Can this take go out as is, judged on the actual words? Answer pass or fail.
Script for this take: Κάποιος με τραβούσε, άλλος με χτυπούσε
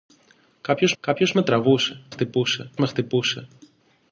fail